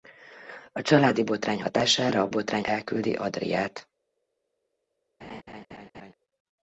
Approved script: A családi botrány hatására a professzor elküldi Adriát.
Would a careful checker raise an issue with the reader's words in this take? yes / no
yes